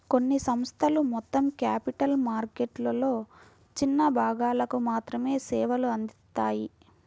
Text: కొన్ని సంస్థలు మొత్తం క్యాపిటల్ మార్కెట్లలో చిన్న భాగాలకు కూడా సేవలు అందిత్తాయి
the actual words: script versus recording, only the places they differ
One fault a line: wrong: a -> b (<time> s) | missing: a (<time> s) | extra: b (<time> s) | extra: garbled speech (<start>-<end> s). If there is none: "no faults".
wrong: కూడా -> మాత్రమే (4.9 s)